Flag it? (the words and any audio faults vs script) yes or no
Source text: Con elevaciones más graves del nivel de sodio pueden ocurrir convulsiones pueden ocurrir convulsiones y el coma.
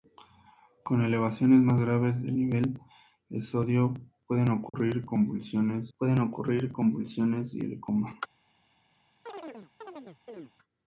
yes